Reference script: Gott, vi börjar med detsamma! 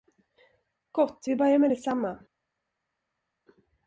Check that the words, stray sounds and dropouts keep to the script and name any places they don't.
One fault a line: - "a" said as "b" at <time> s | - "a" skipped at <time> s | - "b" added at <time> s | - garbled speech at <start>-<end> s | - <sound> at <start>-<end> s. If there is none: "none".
none